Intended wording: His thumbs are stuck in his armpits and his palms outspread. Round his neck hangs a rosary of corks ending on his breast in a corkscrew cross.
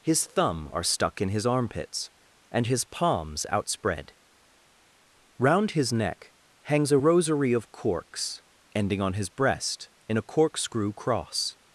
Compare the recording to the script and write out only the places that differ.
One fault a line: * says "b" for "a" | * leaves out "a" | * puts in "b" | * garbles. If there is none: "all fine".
* says "thumb" for "thumbs"